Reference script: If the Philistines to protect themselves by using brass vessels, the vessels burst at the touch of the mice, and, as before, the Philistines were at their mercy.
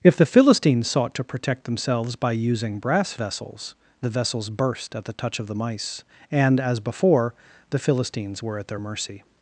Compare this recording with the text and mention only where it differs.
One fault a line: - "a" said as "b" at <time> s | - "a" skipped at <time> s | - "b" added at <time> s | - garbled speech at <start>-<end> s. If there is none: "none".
- "sought" added at 0.9 s